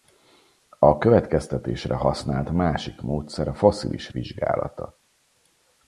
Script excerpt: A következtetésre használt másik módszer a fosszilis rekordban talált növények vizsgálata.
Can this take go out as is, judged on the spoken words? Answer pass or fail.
fail